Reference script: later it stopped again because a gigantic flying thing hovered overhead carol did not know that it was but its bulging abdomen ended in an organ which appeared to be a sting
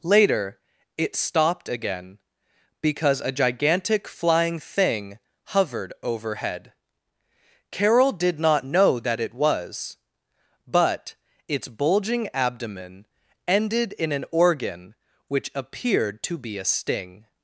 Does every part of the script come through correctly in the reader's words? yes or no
yes